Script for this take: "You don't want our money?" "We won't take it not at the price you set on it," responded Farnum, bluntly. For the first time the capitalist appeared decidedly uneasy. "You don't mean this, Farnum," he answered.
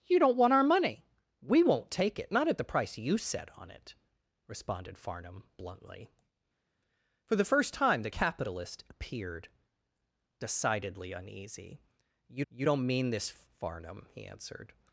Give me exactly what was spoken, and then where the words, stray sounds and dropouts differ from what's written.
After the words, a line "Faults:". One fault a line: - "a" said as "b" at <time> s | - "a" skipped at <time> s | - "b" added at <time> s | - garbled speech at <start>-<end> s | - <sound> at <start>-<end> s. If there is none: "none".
"You don't want our money?" "We won't take it not at the price you set on it," responded Farnum, bluntly. For the first time the capitalist appeared decidedly uneasy. "You you don't mean this, Farnum," he answered.
Faults:
- "you" added at 12.5 s